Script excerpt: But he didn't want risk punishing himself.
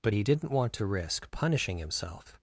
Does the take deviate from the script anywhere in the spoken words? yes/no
yes